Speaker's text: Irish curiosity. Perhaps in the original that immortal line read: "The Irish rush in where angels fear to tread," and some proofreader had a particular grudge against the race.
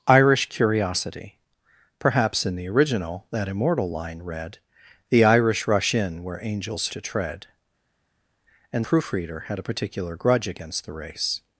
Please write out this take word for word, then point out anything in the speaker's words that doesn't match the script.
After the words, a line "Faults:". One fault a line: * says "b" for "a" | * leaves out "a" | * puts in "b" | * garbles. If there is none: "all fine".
Irish curiosity. Perhaps in the original that immortal line read: "The Irish rush in where angels to tread," and proofreader had a particular grudge against the race.
Faults:
* leaves out "fear"
* leaves out "some"